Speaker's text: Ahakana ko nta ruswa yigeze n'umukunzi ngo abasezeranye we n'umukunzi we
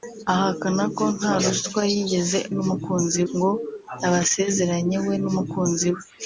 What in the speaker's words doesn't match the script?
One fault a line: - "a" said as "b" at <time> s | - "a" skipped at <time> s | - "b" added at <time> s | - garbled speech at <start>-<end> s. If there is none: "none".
none